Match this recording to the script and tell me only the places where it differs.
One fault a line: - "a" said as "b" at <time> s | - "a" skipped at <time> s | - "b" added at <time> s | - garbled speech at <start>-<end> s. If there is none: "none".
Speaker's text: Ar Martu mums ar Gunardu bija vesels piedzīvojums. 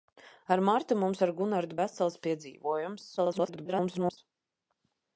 - "bija" skipped at 1.8 s
- garbled speech at 3.2-4.2 s